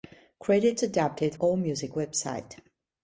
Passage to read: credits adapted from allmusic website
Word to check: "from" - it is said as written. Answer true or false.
false